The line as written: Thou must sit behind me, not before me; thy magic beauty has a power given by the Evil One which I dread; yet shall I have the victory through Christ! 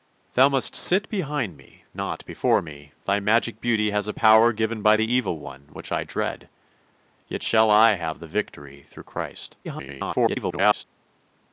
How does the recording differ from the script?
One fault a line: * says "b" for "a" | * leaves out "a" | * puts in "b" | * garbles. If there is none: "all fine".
* garbles